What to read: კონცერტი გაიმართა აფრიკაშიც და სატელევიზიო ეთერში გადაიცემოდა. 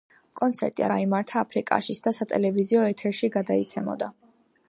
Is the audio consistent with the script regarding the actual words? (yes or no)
yes